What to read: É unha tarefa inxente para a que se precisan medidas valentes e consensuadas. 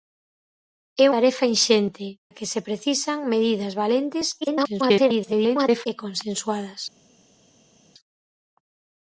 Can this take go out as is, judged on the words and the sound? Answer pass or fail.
fail